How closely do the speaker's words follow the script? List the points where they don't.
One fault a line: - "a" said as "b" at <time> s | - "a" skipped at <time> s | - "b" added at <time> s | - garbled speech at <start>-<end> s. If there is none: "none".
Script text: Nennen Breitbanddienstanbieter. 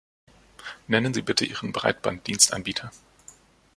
- "Sie bitte Ihren" added at 1.1 s